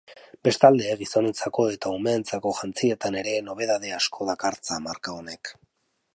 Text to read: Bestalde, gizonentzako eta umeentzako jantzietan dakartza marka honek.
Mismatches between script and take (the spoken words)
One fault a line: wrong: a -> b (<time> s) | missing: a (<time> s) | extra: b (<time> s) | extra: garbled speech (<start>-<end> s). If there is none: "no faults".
extra: ere nobedade asko (3.2 s)